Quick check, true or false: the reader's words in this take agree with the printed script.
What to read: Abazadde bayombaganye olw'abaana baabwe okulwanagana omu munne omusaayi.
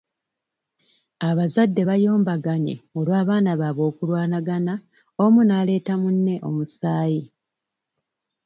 false